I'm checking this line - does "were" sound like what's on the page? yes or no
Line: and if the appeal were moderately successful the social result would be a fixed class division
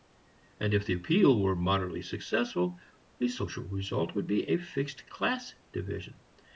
yes